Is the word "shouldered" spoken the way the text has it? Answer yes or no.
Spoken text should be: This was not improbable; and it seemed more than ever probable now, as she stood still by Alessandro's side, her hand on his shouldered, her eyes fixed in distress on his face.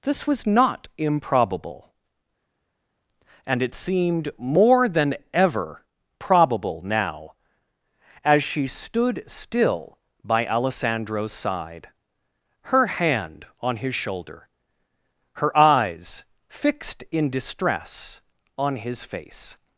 no